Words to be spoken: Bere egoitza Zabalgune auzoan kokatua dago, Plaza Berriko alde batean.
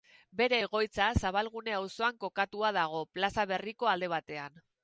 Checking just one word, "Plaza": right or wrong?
right